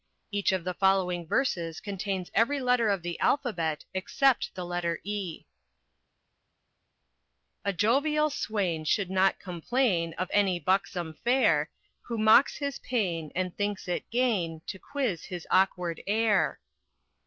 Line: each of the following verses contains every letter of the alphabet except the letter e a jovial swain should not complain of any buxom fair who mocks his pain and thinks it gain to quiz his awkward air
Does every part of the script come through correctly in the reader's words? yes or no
yes